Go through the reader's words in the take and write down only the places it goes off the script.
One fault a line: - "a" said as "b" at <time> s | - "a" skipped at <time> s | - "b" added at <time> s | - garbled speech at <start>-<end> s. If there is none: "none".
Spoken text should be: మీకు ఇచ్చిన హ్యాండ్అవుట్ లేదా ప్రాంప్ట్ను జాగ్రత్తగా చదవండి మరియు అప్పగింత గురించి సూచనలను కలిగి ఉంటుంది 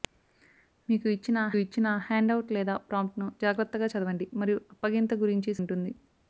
- "ఇచ్చిన" added at 1.6 s
- "సూచనలను కలిగి" skipped at 5.5 s